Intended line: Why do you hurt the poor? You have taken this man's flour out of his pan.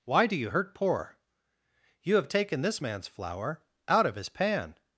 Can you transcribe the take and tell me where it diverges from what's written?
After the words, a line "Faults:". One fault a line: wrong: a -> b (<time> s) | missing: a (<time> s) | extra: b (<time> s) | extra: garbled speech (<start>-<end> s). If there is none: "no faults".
Why do you hurt poor? You have taken this man's flour out of his pan.
Faults:
missing: the (0.7 s)